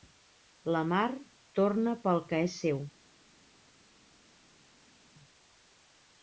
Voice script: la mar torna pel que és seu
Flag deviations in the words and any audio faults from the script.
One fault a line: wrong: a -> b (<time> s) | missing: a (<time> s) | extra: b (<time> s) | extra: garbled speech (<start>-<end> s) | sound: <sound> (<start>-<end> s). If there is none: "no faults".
no faults